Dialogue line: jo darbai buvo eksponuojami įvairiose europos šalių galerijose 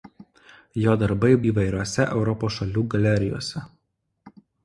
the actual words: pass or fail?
fail